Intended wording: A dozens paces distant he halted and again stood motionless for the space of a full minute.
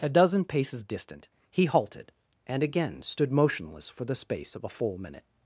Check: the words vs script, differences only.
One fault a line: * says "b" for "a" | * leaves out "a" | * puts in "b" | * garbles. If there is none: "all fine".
* says "dozen" for "dozens"